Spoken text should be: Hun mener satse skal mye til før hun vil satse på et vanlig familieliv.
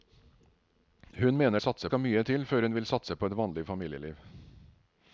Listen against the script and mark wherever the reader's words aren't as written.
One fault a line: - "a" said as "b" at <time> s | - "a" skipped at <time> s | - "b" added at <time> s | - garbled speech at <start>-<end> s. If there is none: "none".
none